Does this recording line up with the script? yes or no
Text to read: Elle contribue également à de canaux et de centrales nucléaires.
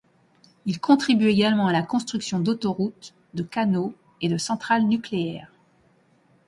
no